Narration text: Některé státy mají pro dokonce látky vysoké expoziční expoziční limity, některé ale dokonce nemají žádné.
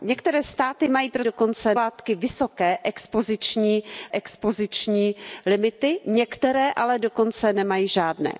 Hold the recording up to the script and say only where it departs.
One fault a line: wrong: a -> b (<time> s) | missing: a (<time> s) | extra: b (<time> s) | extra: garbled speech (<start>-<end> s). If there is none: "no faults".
no faults